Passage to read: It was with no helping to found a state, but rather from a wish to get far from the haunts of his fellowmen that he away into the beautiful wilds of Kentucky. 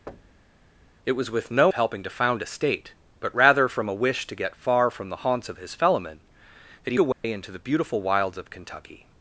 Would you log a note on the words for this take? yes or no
no